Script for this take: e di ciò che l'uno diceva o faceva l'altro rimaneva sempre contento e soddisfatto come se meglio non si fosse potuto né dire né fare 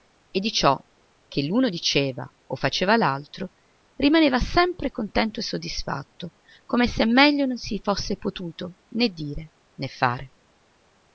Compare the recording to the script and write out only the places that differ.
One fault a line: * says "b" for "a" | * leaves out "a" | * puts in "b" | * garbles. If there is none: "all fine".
all fine